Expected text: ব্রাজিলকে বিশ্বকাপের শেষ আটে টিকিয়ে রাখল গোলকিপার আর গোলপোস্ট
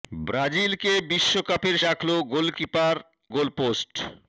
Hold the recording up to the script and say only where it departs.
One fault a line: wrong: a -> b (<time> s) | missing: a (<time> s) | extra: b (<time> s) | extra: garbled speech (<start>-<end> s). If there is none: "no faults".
missing: শেষ আটে টিকিয়ে (1.8 s)
missing: আর (2.9 s)